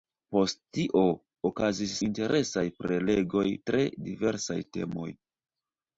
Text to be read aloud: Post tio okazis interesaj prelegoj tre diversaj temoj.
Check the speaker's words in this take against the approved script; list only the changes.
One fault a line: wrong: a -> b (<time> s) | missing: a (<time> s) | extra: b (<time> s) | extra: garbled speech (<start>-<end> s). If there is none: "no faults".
no faults